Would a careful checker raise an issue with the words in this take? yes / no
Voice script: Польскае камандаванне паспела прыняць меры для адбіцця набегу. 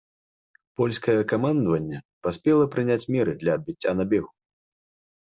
no